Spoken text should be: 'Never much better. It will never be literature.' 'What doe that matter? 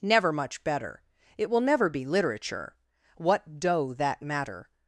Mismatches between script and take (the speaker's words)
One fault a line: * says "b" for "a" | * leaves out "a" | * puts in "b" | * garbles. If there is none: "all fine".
all fine